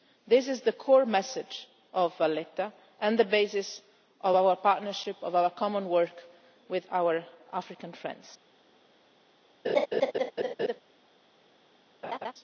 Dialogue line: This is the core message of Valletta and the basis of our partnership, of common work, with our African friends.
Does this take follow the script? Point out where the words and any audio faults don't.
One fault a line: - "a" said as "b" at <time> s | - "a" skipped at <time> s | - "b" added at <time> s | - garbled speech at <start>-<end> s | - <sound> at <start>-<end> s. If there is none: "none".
- "our" added at 5.3 s
- laugh at 9.6-10.8 s
- laugh at 12.0-12.3 s